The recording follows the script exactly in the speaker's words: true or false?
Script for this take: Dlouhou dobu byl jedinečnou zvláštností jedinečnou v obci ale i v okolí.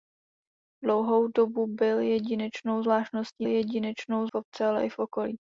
true